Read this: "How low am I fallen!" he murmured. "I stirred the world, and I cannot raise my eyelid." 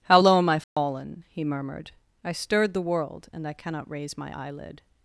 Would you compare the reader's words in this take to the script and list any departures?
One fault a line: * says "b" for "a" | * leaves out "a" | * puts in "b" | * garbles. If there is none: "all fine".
all fine